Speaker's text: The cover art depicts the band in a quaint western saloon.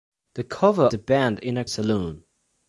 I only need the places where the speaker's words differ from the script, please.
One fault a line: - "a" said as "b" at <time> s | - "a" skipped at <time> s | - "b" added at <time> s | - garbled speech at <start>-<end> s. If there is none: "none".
- "art depicts" skipped at 0.9 s
- "quaint western" skipped at 1.6 s